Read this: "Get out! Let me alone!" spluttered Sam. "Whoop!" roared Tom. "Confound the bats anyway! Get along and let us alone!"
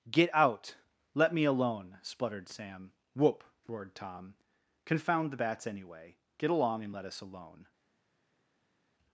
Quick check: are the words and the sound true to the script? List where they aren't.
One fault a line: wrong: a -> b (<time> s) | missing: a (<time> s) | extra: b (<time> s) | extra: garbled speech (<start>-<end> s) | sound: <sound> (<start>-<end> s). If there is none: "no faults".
no faults